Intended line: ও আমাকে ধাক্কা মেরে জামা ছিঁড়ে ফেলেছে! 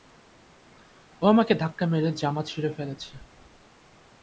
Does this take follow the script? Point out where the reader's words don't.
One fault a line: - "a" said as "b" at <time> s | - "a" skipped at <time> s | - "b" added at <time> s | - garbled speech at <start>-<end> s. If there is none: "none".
none